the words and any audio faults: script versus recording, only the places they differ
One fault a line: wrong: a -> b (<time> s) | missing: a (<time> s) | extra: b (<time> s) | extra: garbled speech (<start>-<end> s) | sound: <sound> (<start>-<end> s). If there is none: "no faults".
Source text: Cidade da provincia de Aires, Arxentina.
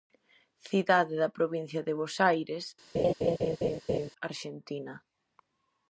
extra: Bos (2.0 s)
sound: laugh (2.9-4.1 s)